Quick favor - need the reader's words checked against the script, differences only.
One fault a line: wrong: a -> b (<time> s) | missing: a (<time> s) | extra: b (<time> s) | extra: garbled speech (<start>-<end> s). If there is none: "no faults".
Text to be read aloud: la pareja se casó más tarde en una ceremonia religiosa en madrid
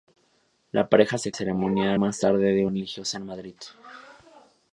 wrong: casó -> ceremonia (1.3 s)
missing: una ceremonia (2.7 s)